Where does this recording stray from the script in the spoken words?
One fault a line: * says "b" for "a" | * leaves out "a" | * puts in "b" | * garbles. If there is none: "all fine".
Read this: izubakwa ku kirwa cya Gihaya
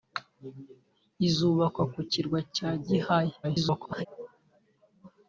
* garbles